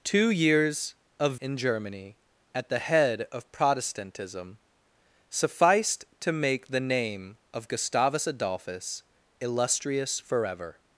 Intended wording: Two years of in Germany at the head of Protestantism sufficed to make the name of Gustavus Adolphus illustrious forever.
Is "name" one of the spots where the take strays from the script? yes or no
no